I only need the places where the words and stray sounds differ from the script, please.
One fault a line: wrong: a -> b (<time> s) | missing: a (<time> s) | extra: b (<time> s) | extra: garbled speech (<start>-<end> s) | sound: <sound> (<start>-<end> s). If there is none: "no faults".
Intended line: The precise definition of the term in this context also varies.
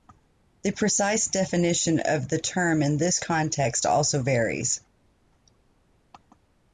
no faults